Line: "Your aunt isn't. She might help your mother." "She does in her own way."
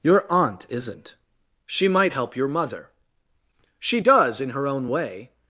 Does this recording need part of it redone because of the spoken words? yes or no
no